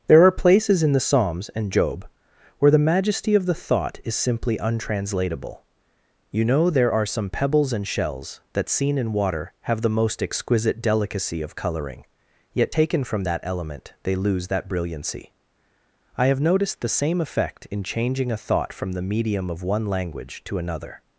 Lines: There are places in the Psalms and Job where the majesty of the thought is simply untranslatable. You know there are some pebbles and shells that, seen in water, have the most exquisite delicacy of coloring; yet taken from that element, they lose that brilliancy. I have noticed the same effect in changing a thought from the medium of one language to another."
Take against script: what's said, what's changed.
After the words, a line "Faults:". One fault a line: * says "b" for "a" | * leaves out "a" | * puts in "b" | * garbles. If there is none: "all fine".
There are places in the Psalms and Job where the majesty of the thought is simply untranslatable. You know there are some pebbles and shells that, seen in water, have the most exquisite delicacy of coloring; yet taken from that element, they lose that brilliancy. I have noticed the same effect in changing a thought from the medium of one language to another."
Faults:
all fine